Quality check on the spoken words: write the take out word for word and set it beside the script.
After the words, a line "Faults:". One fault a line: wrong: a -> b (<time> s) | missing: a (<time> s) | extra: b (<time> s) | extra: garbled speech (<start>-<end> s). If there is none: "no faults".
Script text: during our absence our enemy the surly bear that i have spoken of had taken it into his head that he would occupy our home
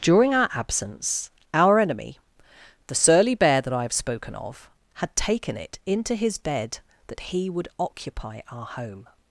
during our absence our enemy the surly bear that i have spoken of had taken it into his bed that he would occupy our home
Faults:
wrong: head -> bed (6.4 s)